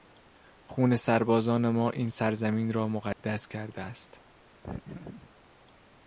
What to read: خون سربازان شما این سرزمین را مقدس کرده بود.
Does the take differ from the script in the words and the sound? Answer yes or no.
yes